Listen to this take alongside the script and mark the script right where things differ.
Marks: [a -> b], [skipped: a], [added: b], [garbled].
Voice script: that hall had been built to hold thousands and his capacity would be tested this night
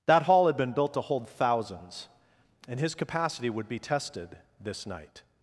that hall had been built to hold thousands and his capacity would be tested this night